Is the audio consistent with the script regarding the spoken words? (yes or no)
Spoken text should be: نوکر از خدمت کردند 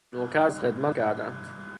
yes